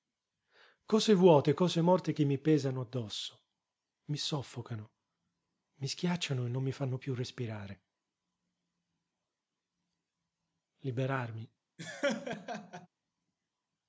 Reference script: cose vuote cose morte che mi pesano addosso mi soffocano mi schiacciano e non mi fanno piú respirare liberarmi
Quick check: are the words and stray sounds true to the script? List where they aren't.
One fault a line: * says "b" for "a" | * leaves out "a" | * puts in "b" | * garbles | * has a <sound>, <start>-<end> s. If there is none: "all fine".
* has a laugh, 11.8-12.9 s